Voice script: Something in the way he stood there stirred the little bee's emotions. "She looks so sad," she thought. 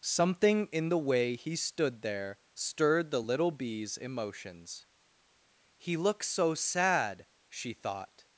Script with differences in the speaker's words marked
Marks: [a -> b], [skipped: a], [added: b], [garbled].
Something in the way he stood there stirred the little bee's emotions. ["She -> He] looks so sad," she thought.